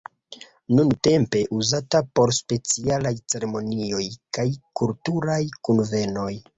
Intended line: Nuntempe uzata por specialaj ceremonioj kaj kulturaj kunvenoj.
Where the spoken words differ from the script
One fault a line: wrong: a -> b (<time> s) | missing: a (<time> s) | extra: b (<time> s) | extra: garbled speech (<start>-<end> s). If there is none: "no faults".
no faults